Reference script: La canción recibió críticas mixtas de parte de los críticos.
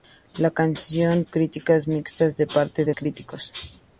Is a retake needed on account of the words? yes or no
yes